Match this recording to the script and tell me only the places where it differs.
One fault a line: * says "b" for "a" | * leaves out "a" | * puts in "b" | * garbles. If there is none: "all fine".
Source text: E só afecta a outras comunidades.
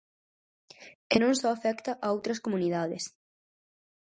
* puts in "non"